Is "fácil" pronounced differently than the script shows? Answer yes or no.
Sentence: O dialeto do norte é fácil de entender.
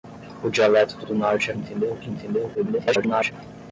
yes